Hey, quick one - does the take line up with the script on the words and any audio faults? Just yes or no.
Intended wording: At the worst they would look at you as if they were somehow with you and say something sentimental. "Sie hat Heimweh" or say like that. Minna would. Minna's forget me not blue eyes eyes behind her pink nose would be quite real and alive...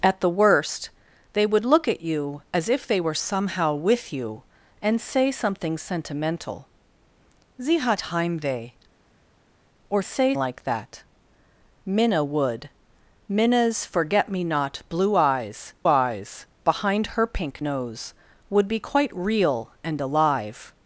yes